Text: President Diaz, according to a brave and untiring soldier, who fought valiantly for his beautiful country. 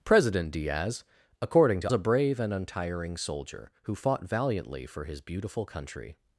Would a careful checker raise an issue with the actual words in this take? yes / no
no